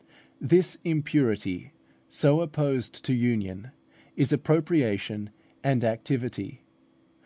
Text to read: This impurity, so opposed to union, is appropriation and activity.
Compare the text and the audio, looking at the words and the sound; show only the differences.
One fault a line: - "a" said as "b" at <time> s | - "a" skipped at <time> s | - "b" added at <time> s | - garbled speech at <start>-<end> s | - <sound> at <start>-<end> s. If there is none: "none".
none